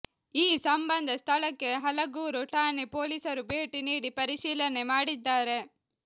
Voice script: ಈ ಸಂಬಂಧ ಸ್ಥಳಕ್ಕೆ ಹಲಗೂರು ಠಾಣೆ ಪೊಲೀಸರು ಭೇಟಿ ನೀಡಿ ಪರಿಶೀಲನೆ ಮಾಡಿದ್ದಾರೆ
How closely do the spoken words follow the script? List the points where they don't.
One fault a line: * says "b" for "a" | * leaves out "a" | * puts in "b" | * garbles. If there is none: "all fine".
all fine